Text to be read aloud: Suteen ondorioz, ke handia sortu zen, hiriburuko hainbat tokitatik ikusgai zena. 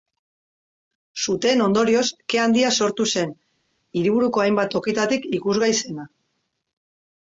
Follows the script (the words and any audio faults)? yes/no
yes